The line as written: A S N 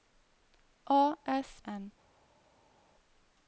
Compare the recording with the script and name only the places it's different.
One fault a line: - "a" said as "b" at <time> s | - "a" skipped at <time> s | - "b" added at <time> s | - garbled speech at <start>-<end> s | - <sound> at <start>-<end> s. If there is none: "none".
none